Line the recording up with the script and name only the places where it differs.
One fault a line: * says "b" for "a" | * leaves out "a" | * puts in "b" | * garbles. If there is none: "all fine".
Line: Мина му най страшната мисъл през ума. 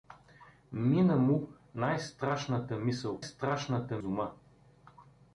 * says "страшната" for "през"